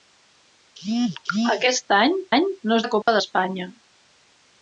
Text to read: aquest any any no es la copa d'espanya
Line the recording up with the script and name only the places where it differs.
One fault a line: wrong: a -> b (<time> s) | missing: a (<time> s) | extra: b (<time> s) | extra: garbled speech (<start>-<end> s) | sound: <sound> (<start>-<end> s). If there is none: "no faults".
sound: dropout (3.0-3.1 s)